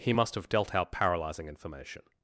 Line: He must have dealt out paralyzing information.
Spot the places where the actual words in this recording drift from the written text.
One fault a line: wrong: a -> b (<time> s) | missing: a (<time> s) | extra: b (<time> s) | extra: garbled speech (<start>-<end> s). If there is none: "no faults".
no faults